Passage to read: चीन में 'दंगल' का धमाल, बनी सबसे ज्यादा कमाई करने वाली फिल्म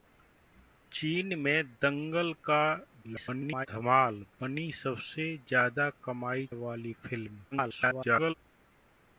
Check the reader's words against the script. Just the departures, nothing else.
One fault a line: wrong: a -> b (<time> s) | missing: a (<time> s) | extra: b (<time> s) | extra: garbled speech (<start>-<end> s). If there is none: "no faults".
extra: garbled speech (3.0-3.7 s)
missing: करने (6.5 s)
extra: garbled speech (7.5-8.3 s)